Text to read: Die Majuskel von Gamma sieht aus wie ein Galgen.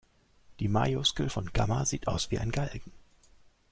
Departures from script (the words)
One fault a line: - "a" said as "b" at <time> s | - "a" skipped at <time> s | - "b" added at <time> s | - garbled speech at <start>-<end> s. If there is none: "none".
none